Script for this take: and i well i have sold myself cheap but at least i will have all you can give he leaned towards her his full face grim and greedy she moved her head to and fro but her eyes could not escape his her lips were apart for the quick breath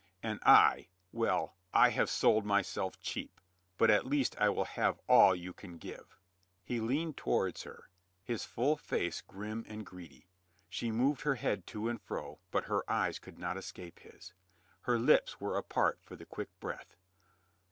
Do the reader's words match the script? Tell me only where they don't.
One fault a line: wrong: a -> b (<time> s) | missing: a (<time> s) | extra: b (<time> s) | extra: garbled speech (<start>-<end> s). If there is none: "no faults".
no faults